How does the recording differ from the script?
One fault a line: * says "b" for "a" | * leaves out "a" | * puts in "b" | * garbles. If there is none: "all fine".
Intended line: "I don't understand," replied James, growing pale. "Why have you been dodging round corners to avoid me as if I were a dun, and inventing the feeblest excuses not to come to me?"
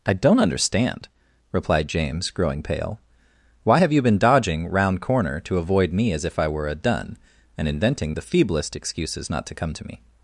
* says "corner" for "corners"